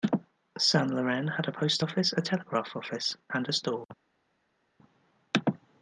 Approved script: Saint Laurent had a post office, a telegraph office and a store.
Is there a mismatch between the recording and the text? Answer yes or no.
no